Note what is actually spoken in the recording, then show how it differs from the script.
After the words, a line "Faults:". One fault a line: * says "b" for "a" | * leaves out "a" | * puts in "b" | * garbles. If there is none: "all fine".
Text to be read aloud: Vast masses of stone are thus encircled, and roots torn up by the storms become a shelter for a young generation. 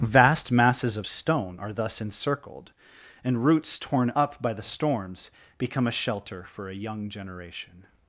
Vast masses of stone are thus encircled, and roots torn up by the storms become a shelter for a young generation.
Faults:
all fine